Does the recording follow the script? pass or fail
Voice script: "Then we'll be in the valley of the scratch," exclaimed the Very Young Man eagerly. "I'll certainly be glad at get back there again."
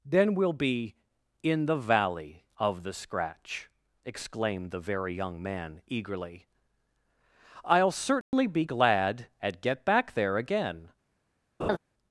pass